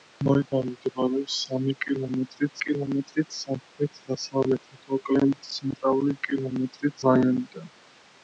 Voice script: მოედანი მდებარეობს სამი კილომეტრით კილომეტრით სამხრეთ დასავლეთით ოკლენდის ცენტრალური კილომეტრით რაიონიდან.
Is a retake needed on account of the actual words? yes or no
no